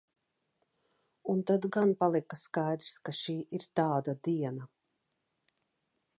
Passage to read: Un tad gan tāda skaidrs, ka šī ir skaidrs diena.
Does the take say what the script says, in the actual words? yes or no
no